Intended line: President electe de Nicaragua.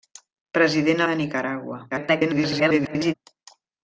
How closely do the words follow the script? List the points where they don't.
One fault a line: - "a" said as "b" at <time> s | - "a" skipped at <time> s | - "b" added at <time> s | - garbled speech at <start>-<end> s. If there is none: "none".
- "electe" skipped at 1.1 s
- garbled speech at 1.9-3.1 s